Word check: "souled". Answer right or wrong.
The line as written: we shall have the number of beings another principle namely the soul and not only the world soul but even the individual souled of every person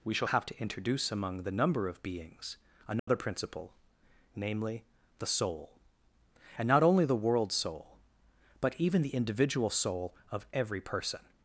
wrong